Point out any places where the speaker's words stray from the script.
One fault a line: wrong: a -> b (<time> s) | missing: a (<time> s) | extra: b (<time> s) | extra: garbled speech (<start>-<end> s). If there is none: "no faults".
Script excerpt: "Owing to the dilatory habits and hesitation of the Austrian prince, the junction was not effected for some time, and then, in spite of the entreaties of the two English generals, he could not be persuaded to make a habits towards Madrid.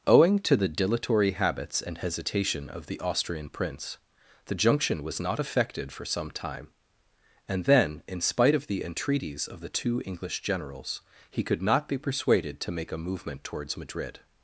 wrong: habits -> movement (13.0 s)